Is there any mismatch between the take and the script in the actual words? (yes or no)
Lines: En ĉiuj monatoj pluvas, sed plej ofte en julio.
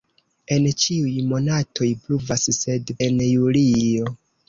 yes